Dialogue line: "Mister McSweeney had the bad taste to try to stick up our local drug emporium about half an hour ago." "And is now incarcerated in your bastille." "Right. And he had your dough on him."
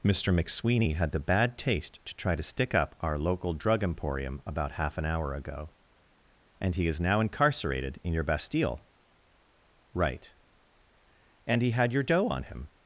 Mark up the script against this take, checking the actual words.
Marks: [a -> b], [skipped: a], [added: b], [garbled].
"Mister McSweeney had the bad taste to try to stick up our local drug emporium about half an hour ago." "And [added: he] is now incarcerated in your bastille." "Right. And he had your dough on him."